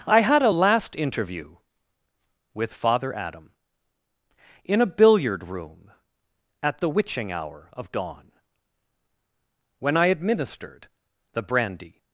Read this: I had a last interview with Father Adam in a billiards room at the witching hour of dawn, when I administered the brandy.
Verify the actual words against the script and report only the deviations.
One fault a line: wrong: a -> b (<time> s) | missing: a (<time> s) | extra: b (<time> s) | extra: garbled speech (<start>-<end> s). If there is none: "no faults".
wrong: billiards -> billiard (4.9 s)